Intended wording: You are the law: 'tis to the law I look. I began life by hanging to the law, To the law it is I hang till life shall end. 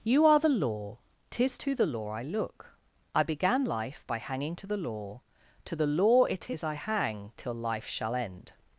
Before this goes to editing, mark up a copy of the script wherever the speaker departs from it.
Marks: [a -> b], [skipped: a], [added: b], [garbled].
You are the law: 'tis to the law I look. I began life by hanging to the law, To the law it is I hang till life shall end.